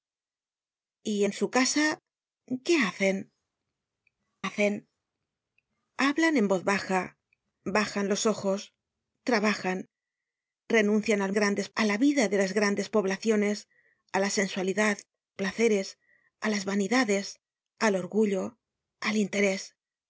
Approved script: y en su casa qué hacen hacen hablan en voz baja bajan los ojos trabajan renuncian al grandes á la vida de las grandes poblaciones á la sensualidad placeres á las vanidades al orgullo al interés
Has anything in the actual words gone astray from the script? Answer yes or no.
no